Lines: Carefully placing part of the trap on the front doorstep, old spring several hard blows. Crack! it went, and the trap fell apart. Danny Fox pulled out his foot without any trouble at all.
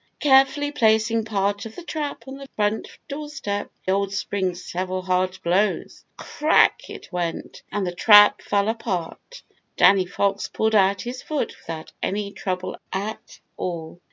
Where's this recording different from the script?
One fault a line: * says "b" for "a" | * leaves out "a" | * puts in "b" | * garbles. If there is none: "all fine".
all fine